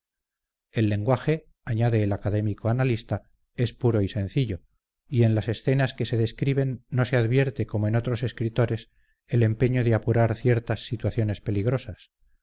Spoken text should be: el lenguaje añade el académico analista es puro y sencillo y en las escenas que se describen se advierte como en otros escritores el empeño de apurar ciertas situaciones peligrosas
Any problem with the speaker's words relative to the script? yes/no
yes